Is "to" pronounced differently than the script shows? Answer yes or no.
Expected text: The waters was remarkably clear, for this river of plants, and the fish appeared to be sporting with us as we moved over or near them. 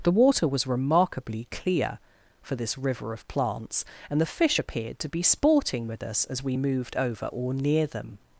no